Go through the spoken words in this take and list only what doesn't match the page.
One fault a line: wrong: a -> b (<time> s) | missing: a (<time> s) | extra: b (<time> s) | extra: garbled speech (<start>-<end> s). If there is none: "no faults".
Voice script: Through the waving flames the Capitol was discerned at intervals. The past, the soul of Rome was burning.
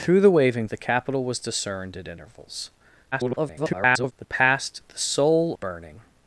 missing: flames (0.7 s)
extra: garbled speech (3.1-4.1 s)
missing: of Rome was (5.6 s)